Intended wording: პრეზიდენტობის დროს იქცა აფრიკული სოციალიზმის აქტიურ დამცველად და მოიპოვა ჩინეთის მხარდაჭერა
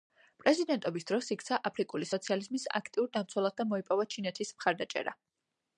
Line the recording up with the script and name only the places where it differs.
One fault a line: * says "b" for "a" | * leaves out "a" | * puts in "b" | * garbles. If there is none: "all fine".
all fine